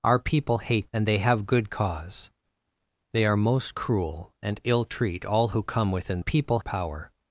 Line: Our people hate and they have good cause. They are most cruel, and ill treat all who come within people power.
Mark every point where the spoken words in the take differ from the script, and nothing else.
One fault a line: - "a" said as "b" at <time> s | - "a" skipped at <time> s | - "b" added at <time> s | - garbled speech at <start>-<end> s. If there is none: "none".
none